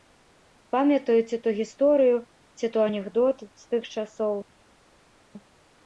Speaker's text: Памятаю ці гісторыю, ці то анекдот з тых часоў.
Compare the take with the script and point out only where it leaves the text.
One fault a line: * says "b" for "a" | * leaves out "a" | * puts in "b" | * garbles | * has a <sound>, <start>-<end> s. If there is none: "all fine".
* puts in "то"